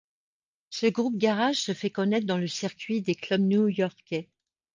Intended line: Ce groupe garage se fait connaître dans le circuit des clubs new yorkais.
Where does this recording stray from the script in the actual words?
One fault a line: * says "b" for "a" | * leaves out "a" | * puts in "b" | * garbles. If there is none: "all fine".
all fine